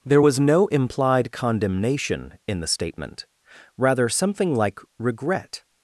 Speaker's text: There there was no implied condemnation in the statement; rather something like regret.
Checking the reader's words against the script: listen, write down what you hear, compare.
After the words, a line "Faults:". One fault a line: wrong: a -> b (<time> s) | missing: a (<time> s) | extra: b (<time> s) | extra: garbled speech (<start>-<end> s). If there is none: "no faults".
There was no implied condemnation in the statement; rather something like regret.
Faults:
missing: there (0.2 s)